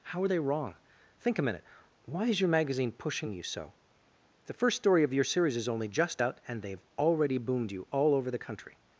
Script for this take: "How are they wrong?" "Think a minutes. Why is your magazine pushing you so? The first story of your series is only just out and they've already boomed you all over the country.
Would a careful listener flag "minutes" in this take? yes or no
yes